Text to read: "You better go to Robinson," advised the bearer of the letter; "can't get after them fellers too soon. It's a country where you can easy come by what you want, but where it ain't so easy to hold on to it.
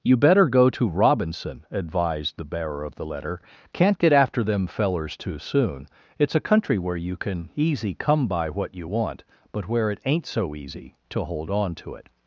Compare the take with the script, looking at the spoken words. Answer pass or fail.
pass